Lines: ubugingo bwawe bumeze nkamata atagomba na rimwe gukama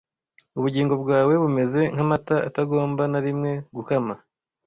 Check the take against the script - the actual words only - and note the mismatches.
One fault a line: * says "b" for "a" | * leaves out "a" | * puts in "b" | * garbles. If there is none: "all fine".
all fine